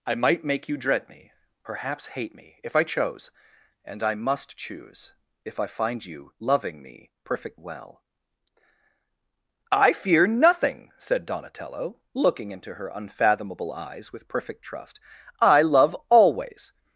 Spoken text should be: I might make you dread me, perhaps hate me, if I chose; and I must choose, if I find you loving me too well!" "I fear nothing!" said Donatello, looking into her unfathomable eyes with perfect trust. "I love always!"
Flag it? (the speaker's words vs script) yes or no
yes